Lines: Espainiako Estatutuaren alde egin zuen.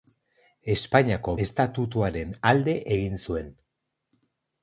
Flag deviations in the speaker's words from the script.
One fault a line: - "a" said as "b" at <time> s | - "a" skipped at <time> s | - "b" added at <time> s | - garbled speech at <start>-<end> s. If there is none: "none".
none